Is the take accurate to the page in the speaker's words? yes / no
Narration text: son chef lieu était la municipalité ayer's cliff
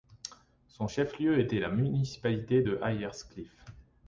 no